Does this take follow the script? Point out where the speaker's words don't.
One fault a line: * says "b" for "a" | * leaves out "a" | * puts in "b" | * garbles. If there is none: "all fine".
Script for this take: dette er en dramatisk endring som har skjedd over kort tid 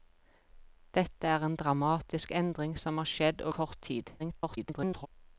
* leaves out "over"
* garbles